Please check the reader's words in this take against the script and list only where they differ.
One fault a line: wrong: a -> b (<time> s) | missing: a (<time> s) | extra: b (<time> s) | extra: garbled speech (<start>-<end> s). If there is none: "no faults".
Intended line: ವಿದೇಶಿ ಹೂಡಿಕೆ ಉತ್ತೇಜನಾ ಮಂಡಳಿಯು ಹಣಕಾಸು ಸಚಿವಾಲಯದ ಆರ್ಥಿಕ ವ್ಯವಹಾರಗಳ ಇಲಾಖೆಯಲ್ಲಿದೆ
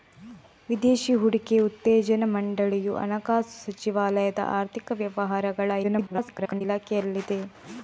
extra: garbled speech (5.8-6.6 s)